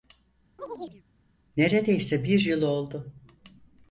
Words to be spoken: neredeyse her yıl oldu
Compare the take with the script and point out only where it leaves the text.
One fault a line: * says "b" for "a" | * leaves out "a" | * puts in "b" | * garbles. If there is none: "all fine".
* says "bir" for "her"